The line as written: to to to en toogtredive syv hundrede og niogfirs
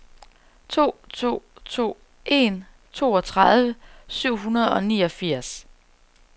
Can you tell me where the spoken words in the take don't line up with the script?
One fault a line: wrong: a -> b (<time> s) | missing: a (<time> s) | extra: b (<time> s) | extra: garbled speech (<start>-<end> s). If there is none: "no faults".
no faults